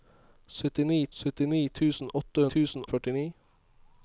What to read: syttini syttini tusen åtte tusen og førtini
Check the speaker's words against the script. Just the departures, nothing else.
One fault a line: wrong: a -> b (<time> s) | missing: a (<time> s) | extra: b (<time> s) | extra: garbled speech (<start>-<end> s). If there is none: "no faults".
no faults